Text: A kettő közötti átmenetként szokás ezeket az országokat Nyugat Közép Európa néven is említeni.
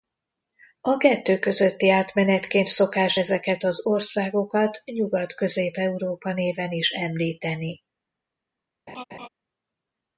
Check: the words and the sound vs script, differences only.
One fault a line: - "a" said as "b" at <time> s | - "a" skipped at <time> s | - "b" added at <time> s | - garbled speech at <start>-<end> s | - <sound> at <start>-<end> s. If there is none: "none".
- laugh at 8.9-9.3 s